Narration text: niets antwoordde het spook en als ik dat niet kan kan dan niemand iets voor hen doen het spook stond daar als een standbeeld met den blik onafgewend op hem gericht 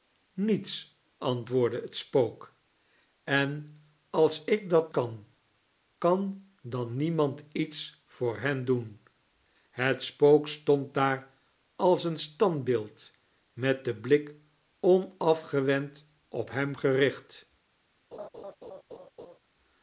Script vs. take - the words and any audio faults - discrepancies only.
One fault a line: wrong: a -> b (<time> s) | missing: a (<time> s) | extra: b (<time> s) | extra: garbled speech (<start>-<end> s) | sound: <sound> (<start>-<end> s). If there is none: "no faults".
missing: niet (4.9 s)
sound: laugh (18.1-19.4 s)